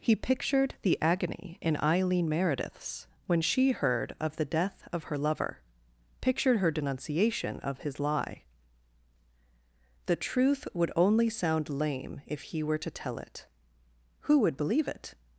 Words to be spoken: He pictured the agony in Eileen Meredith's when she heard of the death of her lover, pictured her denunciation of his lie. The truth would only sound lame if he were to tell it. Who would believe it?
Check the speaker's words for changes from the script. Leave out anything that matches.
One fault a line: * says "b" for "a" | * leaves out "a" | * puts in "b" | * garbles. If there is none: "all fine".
all fine